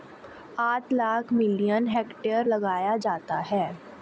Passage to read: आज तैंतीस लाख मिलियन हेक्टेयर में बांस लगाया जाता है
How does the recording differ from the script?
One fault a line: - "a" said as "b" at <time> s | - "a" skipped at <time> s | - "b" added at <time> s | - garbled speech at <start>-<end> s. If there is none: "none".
- "तैंतीस" skipped at 0.8 s
- "में बांस" skipped at 2.5 s